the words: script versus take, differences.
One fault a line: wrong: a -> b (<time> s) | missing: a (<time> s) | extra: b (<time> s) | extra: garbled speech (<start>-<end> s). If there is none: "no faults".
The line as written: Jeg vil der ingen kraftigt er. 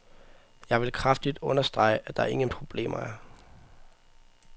extra: kraftigt understrege at (0.9 s)
wrong: kraftigt -> problemer (2.5 s)